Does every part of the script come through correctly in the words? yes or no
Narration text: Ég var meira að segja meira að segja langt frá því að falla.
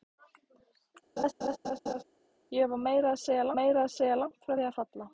yes